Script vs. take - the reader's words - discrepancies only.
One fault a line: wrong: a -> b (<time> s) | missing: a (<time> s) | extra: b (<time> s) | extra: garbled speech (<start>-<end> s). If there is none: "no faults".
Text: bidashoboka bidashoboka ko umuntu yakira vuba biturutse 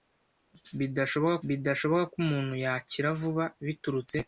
no faults